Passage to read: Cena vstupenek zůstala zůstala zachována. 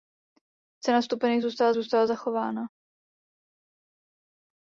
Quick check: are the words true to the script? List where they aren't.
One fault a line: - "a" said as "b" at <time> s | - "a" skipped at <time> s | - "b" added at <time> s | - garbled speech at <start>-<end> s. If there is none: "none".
none